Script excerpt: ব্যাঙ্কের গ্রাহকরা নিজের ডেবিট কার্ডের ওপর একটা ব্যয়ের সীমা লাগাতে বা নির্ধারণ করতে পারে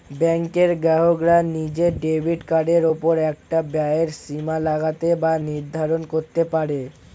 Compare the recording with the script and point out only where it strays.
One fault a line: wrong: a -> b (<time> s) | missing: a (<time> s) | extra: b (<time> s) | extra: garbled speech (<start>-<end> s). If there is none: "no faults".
no faults